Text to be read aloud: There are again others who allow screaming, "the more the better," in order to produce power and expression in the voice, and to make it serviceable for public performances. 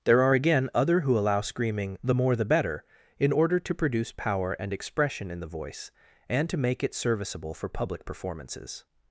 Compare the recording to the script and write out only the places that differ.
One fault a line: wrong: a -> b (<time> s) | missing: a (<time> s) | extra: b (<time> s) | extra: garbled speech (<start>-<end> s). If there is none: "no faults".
wrong: others -> other (0.7 s)